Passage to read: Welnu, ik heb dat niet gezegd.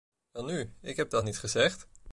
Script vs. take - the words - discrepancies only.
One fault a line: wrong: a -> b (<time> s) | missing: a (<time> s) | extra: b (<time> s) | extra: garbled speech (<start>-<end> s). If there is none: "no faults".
no faults